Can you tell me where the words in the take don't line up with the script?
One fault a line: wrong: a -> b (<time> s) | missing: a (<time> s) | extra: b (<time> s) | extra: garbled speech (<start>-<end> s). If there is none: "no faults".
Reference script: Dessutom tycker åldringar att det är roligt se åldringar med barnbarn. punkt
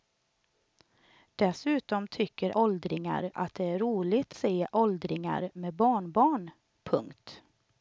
no faults